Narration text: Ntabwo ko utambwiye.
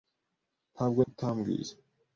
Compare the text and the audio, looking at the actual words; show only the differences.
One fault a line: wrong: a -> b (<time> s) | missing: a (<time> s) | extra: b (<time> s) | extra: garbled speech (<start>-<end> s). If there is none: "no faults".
no faults